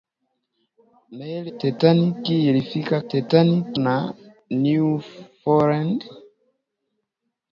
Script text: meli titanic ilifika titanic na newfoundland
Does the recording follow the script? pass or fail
pass